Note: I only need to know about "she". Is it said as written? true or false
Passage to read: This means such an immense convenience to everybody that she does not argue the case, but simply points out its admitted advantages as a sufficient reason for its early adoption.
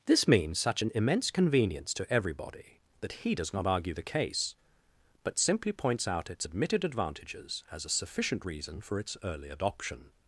false